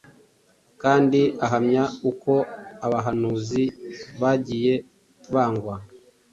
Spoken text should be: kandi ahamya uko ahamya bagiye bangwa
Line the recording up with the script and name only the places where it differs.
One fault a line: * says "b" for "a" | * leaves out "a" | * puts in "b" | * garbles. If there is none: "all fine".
* says "abahanuzi" for "ahamya"